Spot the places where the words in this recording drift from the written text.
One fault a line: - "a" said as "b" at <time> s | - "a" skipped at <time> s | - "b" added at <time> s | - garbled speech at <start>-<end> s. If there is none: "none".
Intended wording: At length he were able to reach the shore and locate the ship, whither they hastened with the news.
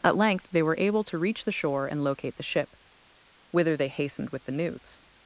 - "he" said as "they" at 0.5 s